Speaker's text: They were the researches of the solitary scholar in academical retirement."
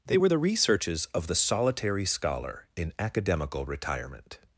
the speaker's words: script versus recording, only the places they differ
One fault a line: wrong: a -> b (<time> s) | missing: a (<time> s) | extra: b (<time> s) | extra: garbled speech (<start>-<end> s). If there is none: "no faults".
no faults